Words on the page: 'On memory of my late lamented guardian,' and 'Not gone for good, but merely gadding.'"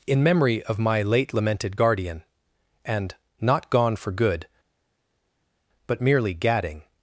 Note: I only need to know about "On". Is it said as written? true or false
false